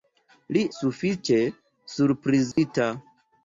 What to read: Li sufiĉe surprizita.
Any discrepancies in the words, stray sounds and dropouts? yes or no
yes